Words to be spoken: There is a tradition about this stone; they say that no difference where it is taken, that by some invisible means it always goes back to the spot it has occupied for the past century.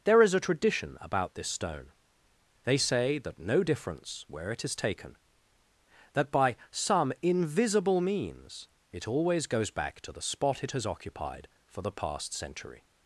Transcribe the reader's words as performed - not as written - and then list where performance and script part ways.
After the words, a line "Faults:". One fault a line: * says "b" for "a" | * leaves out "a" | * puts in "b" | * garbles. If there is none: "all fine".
There is a tradition about this stone; they say that no difference where it is taken, that by some invisible means it always goes back to the spot it has occupied for the past century.
Faults:
all fine